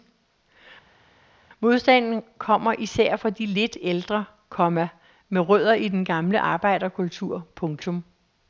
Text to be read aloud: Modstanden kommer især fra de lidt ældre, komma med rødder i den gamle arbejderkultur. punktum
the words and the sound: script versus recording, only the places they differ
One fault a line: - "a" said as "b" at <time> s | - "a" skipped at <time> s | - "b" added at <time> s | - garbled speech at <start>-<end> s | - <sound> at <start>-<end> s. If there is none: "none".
none